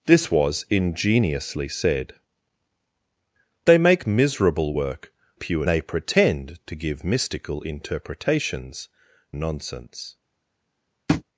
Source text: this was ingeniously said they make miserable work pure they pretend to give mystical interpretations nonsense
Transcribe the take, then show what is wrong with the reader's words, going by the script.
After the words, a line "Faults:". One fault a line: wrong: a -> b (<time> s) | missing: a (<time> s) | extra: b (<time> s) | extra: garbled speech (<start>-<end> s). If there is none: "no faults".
this was ingeniously said they make miserable work pure they pretend to give mystical interpretations nonsense
Faults:
no faults